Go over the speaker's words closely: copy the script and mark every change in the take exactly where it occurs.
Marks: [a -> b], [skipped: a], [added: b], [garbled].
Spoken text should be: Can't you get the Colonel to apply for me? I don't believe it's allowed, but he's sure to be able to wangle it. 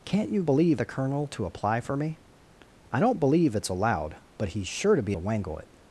Can't you [get -> believe] the Colonel to apply for me? I don't believe it's allowed, but he's sure to be [skipped: able] to wangle it.